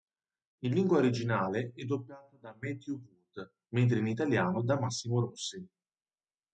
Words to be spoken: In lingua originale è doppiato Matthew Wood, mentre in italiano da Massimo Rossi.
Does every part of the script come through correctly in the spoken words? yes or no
no